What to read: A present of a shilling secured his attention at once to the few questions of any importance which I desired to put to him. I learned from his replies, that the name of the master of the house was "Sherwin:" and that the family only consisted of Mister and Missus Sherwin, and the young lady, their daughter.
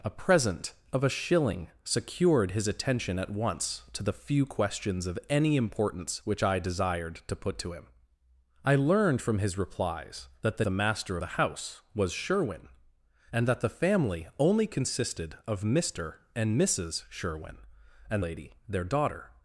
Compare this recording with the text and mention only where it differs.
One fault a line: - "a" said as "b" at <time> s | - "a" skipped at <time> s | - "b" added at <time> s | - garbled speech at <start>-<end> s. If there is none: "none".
- "name of" skipped at 10.7 s
- "of" skipped at 11.2 s
- "the young" skipped at 18.2 s